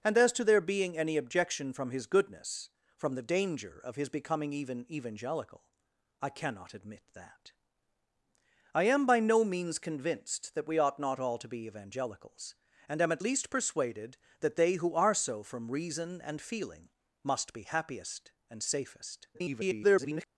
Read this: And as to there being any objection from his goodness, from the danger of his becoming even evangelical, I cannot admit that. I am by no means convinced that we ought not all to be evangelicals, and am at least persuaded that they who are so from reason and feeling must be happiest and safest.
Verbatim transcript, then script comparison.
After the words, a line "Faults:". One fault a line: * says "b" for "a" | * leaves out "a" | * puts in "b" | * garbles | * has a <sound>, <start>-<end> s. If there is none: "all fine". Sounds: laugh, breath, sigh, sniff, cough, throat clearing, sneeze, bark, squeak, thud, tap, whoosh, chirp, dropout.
And as to there being any objection from his goodness, from the danger of his becoming even evangelical, I cannot admit that. I am by no means convinced that we ought not all to be evangelicals, and am at least persuaded that they who are so from reason and feeling must be happiest and safest. [garbled]
Faults:
* garbles